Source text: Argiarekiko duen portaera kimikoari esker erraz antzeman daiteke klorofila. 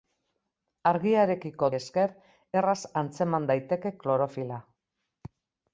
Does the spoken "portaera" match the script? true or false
false